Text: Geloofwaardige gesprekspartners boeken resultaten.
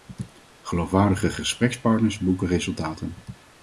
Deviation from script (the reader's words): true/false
false